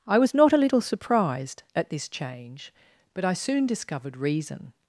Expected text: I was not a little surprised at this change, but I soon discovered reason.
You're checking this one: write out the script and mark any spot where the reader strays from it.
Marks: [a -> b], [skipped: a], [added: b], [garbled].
I was not a little surprised at this change, but I soon discovered reason.